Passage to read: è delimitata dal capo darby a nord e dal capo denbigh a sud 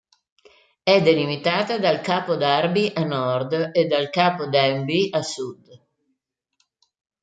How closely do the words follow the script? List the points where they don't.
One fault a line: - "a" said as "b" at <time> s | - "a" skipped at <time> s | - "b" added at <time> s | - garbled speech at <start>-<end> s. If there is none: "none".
none